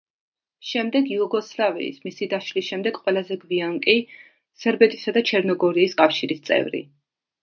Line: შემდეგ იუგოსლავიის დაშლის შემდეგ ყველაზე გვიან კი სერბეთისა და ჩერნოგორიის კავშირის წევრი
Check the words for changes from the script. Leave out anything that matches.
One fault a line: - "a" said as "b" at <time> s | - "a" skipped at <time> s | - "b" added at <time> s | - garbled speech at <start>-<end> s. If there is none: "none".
- "მისი" added at 2.1 s